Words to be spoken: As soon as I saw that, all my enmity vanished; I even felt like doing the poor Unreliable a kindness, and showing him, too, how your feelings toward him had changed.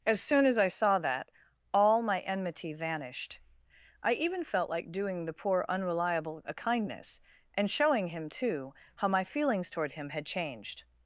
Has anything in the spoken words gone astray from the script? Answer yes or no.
yes